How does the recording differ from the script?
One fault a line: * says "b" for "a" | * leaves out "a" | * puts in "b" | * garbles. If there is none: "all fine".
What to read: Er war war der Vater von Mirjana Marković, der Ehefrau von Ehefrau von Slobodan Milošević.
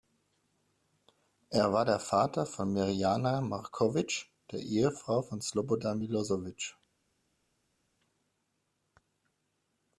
* leaves out "war"
* leaves out "Ehefrau von"